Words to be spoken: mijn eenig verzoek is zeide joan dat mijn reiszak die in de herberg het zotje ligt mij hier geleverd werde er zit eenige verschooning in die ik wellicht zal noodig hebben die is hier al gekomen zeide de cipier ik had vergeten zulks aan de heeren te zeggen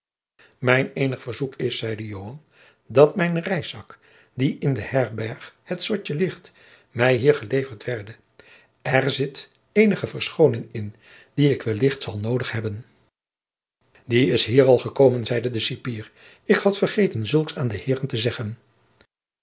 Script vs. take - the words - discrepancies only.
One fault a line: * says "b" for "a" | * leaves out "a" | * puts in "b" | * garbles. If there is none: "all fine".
all fine